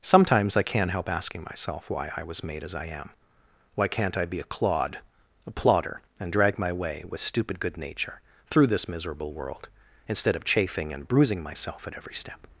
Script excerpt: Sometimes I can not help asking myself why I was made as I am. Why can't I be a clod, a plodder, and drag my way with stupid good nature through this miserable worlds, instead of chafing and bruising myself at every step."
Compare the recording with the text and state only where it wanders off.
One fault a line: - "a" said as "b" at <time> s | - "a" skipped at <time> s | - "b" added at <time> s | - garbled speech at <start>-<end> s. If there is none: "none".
- "worlds" said as "world" at 9.3 s